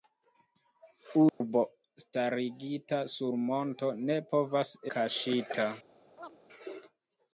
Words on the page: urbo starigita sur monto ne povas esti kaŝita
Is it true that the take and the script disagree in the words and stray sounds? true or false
true